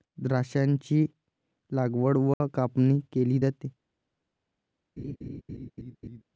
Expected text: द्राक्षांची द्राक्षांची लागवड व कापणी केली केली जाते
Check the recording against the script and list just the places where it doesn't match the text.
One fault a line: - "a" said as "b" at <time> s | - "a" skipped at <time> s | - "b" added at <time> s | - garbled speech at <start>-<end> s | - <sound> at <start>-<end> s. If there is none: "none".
- "द्राक्षांची" skipped at 1.1 s
- dropout at 2.3-2.4 s
- "केली" skipped at 3.4 s
- laugh at 5.0-6.2 s